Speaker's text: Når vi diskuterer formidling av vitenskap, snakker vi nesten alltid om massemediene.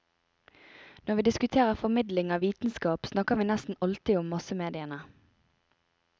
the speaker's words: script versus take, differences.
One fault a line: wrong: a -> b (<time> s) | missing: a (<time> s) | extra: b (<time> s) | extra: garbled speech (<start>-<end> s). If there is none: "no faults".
no faults